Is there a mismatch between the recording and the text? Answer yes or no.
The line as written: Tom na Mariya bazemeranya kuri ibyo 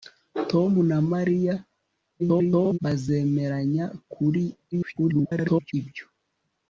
yes